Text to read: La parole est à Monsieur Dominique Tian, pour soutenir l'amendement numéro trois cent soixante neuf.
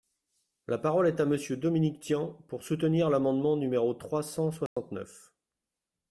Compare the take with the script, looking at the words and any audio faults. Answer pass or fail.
fail